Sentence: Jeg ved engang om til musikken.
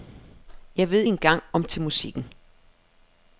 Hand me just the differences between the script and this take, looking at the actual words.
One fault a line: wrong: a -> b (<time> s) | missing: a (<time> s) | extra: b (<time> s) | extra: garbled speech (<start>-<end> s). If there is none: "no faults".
no faults